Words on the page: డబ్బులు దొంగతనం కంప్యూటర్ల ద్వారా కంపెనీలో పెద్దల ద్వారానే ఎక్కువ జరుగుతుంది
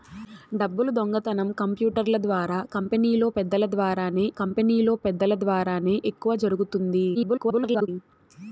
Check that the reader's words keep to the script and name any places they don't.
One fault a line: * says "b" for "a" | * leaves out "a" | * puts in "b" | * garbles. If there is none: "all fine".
* puts in "కంపెనీలో పెద్దల ద్వారానే"
* garbles